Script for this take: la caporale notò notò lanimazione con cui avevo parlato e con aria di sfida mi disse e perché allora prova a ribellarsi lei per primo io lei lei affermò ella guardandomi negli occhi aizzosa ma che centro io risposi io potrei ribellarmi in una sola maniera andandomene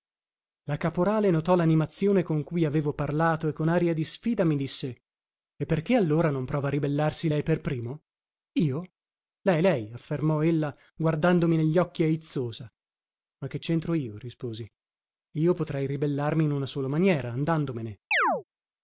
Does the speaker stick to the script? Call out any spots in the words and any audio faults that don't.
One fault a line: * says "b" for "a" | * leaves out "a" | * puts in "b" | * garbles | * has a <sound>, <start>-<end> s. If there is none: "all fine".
* leaves out "notò"
* puts in "non"
* has a chirp, 18.1-18.4 s